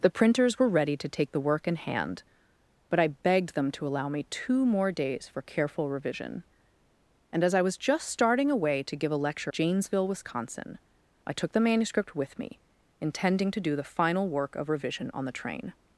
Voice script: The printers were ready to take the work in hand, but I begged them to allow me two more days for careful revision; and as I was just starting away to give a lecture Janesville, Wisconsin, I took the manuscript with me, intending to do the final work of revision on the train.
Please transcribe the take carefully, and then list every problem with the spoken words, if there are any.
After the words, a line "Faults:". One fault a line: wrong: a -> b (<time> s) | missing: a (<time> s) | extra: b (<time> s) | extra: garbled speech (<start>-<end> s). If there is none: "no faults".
The printers were ready to take the work in hand, but I begged them to allow me two more days for careful revision; and as I was just starting away to give a lecture Janesville, Wisconsin, I took the manuscript with me, intending to do the final work of revision on the train.
Faults:
no faults